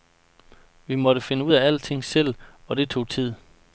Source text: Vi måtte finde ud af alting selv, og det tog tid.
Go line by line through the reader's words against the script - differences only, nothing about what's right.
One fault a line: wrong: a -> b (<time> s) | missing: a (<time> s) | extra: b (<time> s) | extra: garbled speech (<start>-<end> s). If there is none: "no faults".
no faults